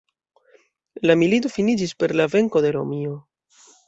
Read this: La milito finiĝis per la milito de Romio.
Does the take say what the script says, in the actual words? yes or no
no